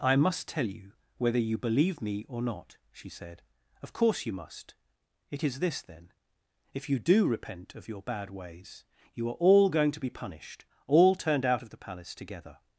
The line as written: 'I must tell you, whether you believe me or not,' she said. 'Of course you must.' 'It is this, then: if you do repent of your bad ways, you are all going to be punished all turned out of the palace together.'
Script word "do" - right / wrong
right